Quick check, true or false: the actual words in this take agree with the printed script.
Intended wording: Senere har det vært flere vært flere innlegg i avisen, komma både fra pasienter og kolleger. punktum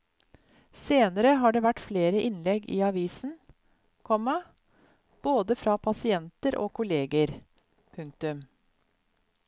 false